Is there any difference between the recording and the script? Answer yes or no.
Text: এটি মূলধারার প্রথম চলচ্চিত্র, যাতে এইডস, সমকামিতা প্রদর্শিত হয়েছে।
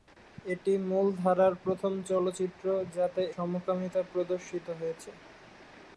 yes